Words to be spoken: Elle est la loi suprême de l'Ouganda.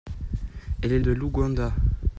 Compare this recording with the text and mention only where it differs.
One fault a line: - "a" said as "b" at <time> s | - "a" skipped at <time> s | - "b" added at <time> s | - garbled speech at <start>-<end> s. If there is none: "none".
- "la loi suprême" skipped at 1.0 s